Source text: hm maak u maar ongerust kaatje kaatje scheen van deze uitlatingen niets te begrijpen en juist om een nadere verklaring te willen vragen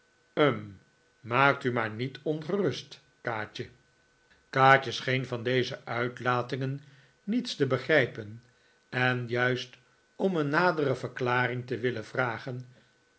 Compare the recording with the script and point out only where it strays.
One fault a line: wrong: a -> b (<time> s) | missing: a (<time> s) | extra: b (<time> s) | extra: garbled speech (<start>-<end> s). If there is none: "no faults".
extra: niet (1.9 s)